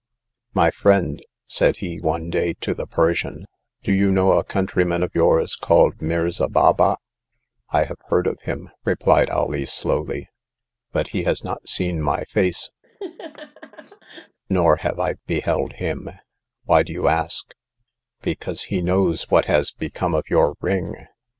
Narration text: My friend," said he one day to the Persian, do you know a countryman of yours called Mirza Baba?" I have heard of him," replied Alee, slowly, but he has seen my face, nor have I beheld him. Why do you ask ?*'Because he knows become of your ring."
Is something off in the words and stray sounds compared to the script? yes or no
yes